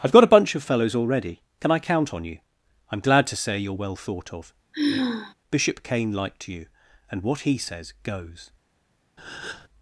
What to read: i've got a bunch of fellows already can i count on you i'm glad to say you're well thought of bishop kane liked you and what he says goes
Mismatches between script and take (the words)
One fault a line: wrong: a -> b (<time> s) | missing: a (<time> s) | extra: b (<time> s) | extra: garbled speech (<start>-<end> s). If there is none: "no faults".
no faults